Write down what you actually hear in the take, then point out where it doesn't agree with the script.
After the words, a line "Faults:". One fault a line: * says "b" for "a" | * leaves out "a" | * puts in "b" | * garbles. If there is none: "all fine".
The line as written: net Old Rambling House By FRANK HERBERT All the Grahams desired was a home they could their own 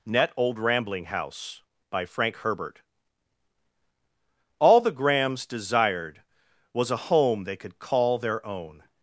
net Old Rambling House By FRANK HERBERT All the Grahams desired was a home they could call their own
Faults:
* puts in "call"